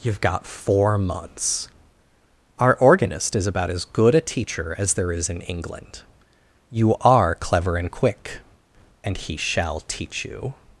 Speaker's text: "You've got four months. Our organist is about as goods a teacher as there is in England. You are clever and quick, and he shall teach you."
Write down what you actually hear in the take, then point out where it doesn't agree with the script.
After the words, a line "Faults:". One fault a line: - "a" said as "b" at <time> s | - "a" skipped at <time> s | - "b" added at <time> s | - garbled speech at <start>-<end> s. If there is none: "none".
"You've got four months. Our organist is about as good a teacher as there is in England. You are clever and quick, and he shall teach you."
Faults:
- "goods" said as "good" at 3.9 s